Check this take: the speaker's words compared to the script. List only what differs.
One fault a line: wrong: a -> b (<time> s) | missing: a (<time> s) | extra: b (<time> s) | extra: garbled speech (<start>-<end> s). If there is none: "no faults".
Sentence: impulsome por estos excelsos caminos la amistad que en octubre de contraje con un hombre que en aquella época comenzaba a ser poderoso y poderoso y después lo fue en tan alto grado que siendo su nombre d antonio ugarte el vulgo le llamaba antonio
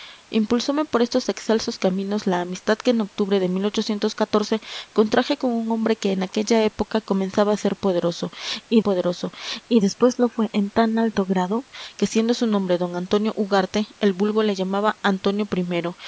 no faults